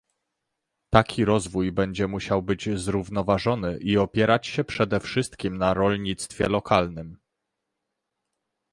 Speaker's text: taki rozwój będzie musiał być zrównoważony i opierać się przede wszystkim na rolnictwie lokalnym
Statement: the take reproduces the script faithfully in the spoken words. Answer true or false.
true